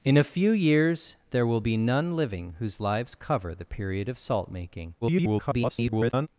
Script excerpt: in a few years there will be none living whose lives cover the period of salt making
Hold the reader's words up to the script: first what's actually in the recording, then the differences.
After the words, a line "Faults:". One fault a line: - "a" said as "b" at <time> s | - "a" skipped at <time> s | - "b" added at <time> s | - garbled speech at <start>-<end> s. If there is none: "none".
in a few years there will be none living whose lives cover the period of salt making [garbled]
Faults:
- garbled speech at 5.0-6.3 s